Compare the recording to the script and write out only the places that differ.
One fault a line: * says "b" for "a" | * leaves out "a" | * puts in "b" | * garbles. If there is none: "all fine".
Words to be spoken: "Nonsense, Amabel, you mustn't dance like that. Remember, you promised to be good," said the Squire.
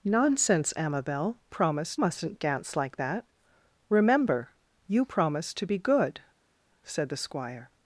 * says "promised" for "you"